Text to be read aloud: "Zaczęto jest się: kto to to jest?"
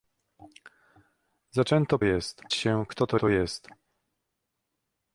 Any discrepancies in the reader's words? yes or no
no